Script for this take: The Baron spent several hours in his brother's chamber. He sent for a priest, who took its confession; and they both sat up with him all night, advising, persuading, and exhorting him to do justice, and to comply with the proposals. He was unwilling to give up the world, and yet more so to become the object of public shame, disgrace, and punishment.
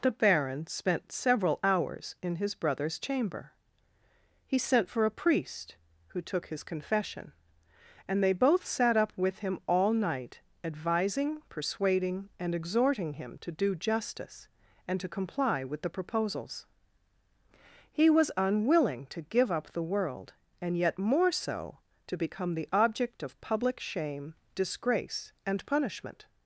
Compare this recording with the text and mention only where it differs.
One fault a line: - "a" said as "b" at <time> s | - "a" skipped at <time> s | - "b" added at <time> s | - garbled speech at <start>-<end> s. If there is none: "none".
- "its" said as "his" at 6.5 s